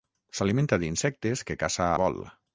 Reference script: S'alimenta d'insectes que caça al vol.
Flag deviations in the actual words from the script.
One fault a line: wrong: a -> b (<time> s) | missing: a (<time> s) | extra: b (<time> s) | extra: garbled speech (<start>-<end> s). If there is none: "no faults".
missing: al (1.9 s)